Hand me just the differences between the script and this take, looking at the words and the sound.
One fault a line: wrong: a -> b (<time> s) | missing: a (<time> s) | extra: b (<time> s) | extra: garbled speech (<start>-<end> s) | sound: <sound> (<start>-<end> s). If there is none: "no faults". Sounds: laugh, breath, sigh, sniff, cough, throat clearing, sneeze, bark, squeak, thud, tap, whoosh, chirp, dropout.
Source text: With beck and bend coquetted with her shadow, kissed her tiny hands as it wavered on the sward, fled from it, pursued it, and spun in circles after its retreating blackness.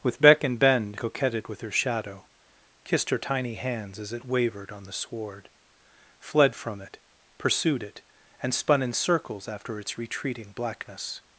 no faults